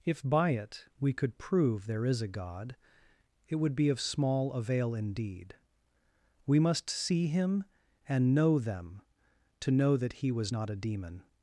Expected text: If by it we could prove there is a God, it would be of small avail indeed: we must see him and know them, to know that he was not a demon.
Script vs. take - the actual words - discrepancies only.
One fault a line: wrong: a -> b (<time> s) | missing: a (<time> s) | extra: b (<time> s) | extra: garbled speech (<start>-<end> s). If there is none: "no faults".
no faults